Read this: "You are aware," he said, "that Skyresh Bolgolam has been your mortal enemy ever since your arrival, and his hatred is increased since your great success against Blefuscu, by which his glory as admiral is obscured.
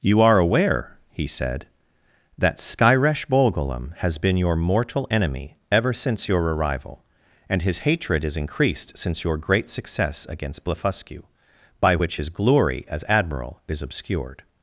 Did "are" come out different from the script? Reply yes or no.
no